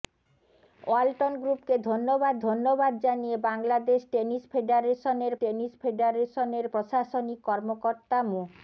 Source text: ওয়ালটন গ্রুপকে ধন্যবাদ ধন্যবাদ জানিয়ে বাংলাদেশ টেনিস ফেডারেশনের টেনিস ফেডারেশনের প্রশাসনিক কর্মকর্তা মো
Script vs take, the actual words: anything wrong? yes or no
no